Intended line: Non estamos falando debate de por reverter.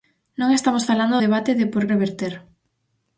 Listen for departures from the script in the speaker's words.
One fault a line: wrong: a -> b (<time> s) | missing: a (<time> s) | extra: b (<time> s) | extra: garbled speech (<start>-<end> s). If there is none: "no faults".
no faults